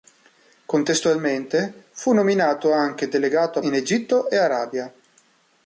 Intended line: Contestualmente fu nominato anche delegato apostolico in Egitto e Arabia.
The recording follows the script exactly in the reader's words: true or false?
false